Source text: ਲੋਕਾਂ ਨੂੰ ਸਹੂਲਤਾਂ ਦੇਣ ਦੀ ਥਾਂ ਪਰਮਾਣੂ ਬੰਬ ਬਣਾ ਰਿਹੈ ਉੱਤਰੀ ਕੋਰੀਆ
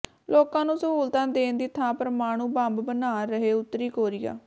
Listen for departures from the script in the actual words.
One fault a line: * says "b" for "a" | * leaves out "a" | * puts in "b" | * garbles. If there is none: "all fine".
all fine